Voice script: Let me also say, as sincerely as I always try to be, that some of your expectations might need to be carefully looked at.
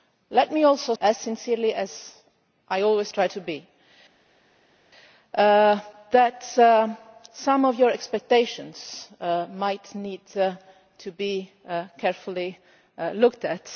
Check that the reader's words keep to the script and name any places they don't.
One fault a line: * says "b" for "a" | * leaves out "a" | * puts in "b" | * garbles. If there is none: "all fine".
* leaves out "say"